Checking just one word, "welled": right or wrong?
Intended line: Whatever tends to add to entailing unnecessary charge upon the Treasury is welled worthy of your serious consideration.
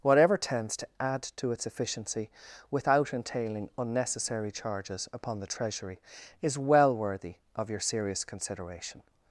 wrong